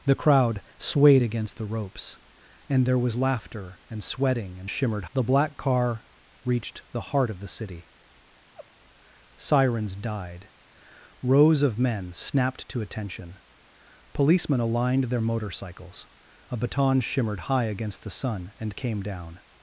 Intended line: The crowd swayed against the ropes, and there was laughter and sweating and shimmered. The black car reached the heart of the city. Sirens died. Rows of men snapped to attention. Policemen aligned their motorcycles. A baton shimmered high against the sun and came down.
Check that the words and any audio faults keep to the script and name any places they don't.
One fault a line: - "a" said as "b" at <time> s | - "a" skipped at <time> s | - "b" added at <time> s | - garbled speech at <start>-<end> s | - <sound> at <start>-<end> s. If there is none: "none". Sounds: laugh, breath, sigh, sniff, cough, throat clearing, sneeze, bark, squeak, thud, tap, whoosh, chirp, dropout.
- laugh at 8.5-8.7 s